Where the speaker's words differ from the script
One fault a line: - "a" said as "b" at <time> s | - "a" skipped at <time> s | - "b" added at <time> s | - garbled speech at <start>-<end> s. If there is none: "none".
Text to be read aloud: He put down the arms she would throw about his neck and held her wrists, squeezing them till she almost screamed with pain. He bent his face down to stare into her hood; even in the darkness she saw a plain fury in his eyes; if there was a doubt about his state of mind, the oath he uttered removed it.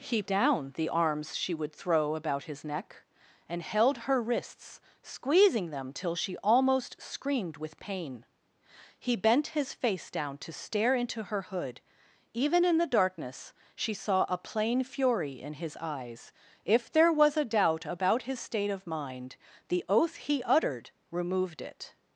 - "put" skipped at 0.2 s